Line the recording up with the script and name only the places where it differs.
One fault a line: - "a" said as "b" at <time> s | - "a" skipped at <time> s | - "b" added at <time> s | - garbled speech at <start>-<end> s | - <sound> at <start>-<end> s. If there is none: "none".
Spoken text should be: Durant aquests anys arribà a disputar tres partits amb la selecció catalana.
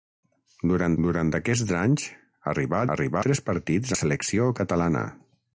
- "durant" added at 1.1 s
- "disputar" said as "arribà" at 3.0 s
- "amb" skipped at 3.9 s